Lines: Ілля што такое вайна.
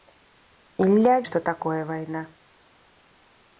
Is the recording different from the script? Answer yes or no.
no